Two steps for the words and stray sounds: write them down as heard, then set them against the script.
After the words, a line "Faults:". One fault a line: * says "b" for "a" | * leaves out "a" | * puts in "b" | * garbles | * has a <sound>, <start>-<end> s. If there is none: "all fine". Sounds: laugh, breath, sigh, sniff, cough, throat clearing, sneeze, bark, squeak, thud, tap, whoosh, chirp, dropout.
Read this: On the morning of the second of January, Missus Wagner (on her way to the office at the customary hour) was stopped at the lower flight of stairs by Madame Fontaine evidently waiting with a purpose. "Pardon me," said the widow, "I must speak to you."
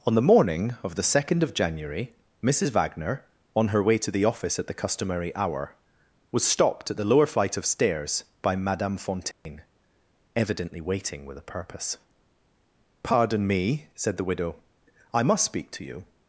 On the morning of the second of January, Missus Wagner (on her way to the office at the customary hour) was stopped at the lower flight of stairs by Madame Fontaine evidently waiting with a purpose. "Pardon me," said the widow, "I must speak to you."
Faults:
* has a dropout, 9.3-9.5 s